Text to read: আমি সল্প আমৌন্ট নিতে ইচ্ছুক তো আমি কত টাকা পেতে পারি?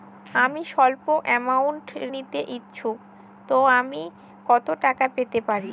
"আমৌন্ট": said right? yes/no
yes